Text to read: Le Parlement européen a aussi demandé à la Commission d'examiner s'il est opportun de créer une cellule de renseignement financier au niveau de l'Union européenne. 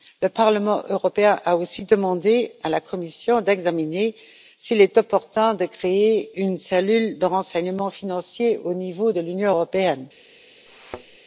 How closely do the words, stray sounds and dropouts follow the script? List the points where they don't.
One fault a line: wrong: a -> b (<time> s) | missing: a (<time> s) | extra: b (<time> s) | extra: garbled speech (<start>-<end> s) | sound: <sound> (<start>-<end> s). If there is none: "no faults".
sound: thud (10.7-11.2 s)